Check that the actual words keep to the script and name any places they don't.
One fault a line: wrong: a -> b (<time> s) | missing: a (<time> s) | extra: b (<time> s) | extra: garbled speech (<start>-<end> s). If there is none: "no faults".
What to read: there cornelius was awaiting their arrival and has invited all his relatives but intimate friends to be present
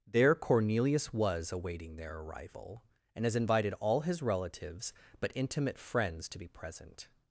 no faults